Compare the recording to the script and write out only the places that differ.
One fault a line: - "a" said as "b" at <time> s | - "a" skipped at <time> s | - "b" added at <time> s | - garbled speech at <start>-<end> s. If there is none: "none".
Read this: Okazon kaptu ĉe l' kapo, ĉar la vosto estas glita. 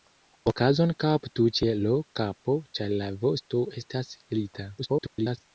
- garbled speech at 4.8-5.4 s